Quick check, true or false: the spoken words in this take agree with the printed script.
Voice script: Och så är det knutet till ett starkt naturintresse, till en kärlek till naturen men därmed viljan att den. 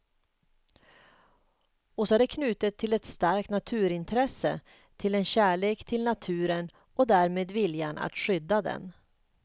false